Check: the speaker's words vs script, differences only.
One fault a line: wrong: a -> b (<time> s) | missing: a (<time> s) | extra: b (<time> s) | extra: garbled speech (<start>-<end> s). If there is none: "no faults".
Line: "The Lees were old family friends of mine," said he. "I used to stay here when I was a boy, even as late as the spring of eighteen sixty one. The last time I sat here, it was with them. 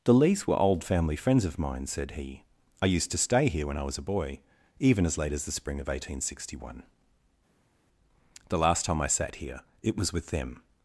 no faults